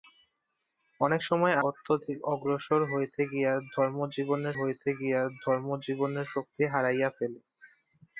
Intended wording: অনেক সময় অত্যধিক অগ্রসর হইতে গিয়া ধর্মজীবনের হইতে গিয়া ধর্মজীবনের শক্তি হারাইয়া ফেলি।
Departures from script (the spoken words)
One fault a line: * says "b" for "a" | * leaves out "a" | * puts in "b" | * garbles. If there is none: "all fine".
all fine